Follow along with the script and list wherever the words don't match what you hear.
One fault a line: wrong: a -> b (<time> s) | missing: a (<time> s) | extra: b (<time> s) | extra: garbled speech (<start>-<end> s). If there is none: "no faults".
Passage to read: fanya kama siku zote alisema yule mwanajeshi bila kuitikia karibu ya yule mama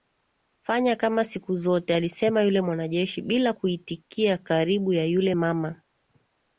no faults